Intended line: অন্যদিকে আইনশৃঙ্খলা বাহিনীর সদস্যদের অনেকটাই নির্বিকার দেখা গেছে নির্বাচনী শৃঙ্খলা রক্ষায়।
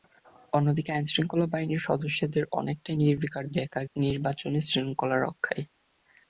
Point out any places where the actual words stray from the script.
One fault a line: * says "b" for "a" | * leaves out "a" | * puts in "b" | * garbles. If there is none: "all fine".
* leaves out "গেছে"